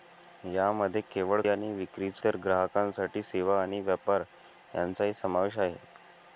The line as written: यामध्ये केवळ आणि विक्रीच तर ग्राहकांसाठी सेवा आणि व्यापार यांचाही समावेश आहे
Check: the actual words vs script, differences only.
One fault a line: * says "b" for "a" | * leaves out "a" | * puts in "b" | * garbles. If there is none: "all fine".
all fine